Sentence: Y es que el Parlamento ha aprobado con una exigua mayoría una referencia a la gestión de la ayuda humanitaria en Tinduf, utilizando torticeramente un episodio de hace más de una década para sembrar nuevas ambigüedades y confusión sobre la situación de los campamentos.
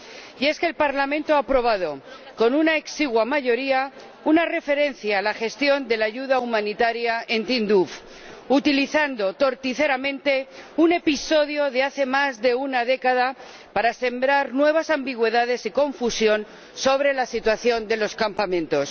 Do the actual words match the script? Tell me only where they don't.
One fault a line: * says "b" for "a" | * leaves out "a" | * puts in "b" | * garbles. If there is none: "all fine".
all fine